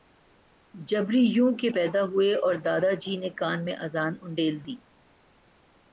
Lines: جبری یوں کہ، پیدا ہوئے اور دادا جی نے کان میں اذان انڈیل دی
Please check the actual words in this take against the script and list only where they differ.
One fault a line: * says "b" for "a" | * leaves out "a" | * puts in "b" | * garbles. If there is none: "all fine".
all fine